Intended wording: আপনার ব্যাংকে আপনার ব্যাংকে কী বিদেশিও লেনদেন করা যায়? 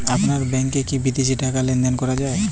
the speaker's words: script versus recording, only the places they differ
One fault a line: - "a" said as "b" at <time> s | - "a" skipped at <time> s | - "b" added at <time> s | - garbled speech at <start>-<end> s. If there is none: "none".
- "আপনার ব্যাংকে" skipped at 0.8 s
- "টাকা" added at 1.4 s